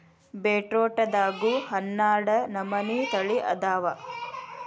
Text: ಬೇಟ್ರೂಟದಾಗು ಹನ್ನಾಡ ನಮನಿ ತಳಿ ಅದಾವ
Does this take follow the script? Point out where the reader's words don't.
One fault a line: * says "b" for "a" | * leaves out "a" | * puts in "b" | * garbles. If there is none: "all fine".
all fine